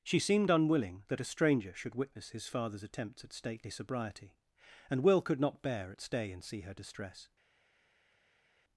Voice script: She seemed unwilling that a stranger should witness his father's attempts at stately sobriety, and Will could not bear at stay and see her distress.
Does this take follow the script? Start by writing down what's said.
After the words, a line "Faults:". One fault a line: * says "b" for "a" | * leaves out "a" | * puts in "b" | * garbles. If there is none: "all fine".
She seemed unwilling that a stranger should witness his father's attempts at stately sobriety, and Will could not bear at stay and see her distress.
Faults:
all fine